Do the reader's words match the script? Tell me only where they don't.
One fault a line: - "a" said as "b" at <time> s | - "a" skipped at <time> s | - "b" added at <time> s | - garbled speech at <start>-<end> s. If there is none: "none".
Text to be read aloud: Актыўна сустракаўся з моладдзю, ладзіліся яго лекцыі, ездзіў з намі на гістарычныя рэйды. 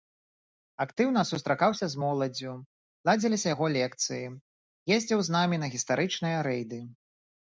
none